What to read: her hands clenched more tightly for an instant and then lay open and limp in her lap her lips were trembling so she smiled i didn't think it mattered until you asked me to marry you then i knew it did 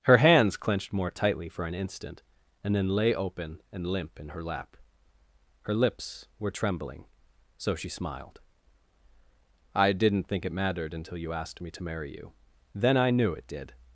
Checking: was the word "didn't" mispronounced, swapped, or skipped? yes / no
no